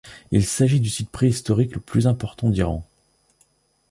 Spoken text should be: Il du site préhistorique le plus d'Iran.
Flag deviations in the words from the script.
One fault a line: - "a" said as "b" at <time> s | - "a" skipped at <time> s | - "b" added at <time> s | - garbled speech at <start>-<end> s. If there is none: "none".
- "s'agit" added at 0.4 s
- "important" added at 2.1 s